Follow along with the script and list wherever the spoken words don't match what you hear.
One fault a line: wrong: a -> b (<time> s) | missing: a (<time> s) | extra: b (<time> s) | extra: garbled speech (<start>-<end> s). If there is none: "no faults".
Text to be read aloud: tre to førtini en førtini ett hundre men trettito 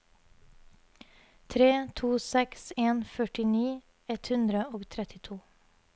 wrong: førtini -> seks (2.3 s)
wrong: men -> og (4.8 s)